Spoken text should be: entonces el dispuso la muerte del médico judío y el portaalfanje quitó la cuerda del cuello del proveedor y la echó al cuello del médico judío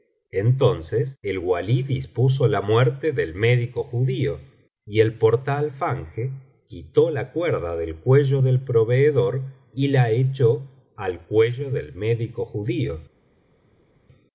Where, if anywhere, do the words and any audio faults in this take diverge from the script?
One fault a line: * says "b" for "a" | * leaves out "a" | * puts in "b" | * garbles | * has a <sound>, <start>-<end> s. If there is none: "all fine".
* puts in "walí"